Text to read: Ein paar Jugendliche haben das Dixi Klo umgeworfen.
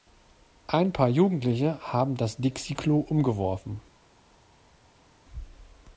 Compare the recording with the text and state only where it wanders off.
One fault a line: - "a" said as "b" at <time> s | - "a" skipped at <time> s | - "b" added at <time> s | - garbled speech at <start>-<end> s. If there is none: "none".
none